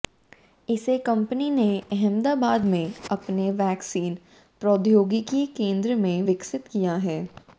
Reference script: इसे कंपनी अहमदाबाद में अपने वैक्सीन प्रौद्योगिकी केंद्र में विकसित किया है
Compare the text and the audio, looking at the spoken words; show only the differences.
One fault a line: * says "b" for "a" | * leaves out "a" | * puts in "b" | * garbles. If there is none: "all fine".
* puts in "ने"